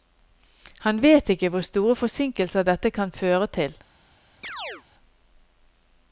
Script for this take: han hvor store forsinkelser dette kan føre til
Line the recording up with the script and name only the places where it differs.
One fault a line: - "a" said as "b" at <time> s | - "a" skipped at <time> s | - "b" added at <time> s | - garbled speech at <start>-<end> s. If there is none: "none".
- "vet ikke" added at 1.0 s